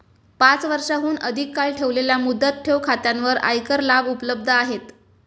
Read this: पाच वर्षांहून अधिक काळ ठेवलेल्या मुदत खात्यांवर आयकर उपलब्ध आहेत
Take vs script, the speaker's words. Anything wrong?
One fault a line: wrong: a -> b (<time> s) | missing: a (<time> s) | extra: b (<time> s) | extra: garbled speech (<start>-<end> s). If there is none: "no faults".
extra: ठेव (2.6 s)
extra: लाभ (3.8 s)